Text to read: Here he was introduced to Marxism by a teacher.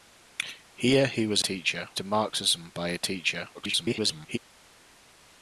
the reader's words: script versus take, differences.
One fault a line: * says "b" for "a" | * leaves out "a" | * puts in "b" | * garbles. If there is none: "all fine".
* says "teacher" for "introduced"
* garbles